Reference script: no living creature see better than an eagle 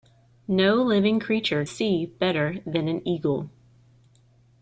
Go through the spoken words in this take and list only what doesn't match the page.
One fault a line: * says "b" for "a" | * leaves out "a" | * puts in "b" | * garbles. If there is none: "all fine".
all fine